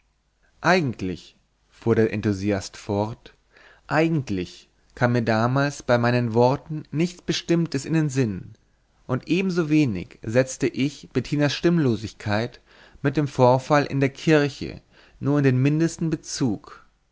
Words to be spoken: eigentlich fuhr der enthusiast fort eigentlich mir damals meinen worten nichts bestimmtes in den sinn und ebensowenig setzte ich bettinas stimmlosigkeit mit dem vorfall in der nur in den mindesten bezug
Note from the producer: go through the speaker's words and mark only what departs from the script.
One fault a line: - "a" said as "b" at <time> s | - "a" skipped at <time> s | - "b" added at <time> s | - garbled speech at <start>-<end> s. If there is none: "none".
- "kam" added at 5.0 s
- "bei" added at 5.8 s
- "kirche" added at 14.1 s